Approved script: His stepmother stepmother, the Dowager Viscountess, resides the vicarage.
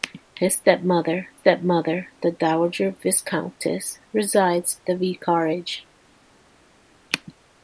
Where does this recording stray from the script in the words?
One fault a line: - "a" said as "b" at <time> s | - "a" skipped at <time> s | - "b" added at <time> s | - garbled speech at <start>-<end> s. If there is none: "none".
none